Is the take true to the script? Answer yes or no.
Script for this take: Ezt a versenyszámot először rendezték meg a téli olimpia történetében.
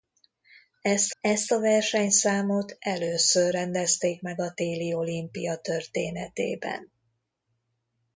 no